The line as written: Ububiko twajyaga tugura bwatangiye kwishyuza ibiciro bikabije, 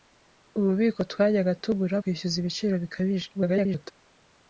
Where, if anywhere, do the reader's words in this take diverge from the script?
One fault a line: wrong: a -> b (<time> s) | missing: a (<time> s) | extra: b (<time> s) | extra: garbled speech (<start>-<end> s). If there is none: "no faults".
missing: bwatangiye (1.9 s)
extra: garbled speech (3.3-3.9 s)